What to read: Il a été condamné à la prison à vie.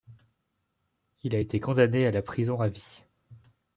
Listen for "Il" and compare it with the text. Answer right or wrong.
right